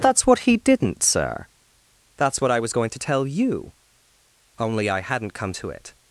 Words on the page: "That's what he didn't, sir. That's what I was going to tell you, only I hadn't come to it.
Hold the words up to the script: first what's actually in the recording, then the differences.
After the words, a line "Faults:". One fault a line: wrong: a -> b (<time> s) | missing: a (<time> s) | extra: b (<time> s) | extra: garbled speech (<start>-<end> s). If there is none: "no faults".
"That's what he didn't, sir. That's what I was going to tell you, only I hadn't come to it.
Faults:
no faults